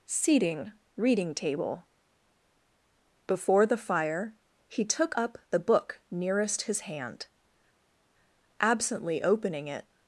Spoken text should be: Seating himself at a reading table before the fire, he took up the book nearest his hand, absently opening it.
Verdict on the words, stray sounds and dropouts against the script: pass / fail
fail